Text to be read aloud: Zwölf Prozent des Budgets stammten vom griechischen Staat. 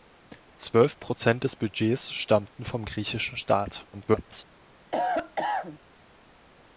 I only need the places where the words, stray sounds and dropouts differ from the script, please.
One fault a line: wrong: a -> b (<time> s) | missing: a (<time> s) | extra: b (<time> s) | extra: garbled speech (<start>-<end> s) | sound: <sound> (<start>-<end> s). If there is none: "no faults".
extra: garbled speech (3.9-4.4 s)
sound: cough (4.9-5.8 s)